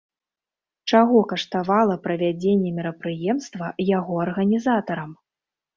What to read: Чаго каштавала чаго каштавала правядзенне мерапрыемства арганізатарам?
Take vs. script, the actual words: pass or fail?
fail